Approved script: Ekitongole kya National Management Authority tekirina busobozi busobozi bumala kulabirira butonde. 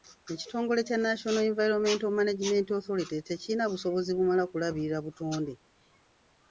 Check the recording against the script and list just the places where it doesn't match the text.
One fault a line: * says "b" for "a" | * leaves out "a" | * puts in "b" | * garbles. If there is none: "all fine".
* puts in "Environmental"
* leaves out "busobozi"